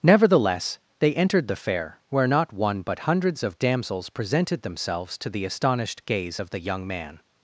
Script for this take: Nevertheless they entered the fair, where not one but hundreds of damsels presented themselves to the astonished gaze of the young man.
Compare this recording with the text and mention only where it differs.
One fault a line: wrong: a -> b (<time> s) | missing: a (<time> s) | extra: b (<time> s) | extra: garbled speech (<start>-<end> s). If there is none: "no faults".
no faults